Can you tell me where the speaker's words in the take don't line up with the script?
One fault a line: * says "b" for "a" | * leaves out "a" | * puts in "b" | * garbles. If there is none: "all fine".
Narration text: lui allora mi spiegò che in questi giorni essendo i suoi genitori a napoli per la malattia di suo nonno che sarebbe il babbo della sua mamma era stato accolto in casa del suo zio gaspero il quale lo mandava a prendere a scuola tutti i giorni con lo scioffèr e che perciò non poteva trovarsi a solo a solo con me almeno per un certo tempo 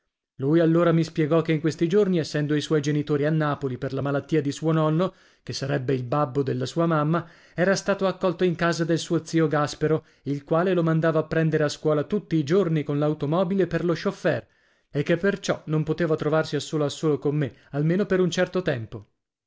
* puts in "l'automobile per"